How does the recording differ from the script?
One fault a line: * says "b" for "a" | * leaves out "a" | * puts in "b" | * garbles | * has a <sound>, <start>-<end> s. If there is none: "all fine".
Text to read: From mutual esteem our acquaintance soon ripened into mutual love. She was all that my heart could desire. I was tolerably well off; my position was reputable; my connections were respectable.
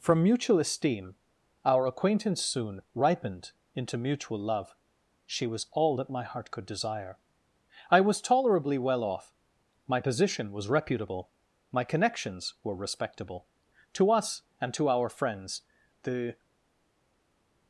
* puts in "To us and to our friends the"